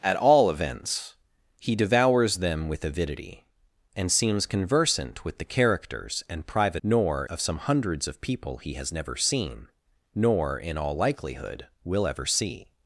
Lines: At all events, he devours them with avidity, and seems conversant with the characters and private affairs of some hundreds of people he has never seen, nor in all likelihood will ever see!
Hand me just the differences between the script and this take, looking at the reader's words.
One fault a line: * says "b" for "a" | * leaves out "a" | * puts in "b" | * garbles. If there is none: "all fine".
* says "nor" for "affairs"